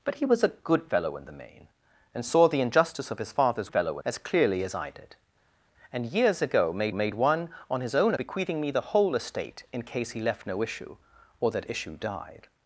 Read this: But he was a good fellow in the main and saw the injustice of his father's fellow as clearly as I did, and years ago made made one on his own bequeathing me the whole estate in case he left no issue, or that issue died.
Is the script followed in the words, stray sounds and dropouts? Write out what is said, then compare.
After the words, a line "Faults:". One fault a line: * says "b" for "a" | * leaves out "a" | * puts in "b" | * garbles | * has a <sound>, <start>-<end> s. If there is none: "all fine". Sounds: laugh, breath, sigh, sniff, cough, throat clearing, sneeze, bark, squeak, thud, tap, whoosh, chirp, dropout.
But he was a good fellow in the main and saw the injustice of his father's fellow as clearly as I did, and years ago made made one on his own bequeathing me the whole estate in case he left no issue, or that issue died.
Faults:
all fine